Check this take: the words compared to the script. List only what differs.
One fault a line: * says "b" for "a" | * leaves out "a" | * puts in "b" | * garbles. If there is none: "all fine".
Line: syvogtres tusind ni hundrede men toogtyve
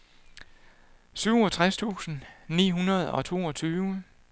* says "og" for "men"